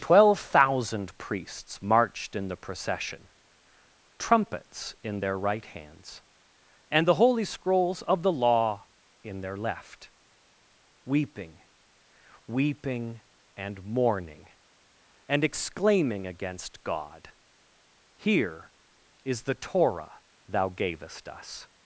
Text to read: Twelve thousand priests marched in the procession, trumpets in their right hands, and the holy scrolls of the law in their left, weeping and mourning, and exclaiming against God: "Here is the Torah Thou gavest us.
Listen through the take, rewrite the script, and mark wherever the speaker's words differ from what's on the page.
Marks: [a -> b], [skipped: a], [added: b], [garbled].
Twelve thousand priests marched in the procession, trumpets in their right hands, and the holy scrolls of the law in their left, weeping [added: weeping] and mourning, and exclaiming against God: "Here is the Torah Thou gavest us.